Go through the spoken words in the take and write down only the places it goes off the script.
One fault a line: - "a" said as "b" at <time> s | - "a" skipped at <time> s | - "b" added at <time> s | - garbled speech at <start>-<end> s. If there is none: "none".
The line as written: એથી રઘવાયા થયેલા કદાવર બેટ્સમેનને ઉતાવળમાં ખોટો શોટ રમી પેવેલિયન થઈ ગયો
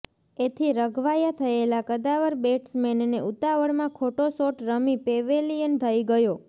none